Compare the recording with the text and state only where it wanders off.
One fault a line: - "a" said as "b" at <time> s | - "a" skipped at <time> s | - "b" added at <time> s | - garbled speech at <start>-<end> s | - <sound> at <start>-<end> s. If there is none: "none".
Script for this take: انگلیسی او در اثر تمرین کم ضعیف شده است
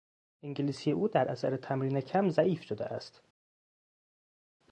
none